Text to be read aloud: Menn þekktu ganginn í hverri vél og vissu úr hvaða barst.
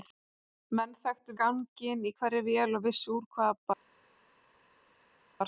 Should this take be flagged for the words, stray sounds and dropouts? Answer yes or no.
no